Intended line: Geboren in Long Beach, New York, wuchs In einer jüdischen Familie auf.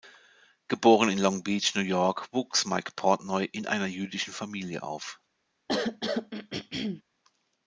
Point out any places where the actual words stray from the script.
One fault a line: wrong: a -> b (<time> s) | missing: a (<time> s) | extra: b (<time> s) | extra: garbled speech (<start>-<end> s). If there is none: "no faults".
extra: Mike Portnoy (2.6 s)